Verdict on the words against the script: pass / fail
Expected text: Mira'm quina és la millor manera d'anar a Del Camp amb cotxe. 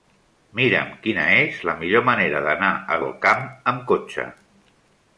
pass